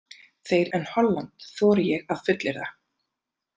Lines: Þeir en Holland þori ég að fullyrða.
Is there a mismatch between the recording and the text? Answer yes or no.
no